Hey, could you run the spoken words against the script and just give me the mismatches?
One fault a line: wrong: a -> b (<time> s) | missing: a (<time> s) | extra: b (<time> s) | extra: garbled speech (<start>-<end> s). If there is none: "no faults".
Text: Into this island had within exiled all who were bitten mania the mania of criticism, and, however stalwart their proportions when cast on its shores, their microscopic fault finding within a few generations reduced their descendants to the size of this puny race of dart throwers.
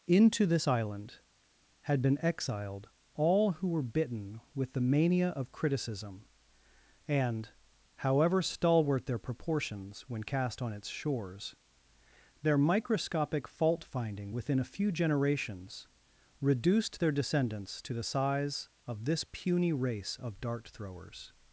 wrong: within -> been (2.0 s)
wrong: mania -> with (4.5 s)